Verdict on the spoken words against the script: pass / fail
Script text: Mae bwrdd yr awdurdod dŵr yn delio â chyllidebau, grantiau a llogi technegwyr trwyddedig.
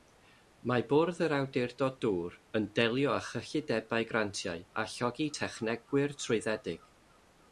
pass